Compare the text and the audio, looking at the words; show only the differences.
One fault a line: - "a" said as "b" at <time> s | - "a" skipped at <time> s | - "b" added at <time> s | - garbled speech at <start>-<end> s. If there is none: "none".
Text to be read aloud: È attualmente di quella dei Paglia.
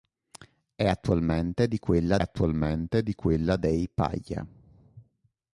- "attualmente di quella" added at 2.2 s